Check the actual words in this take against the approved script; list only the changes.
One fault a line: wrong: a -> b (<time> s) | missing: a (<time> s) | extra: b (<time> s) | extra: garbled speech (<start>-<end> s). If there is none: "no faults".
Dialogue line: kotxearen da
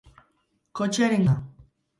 no faults